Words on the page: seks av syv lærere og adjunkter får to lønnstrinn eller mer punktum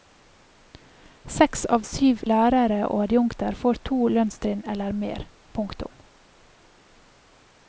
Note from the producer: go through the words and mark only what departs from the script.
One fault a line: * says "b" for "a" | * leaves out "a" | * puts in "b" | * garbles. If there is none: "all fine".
all fine